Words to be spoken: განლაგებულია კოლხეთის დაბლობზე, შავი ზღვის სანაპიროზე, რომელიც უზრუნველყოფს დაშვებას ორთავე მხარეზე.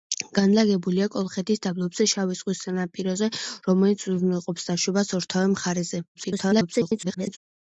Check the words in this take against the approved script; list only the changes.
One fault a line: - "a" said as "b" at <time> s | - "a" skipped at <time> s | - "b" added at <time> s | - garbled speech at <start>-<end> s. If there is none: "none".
- garbled speech at 6.1-7.4 s